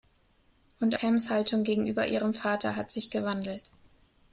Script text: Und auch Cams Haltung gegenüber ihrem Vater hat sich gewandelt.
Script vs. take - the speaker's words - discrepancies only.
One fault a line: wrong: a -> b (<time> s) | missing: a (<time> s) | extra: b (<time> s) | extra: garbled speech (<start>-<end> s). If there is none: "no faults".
missing: auch (0.9 s)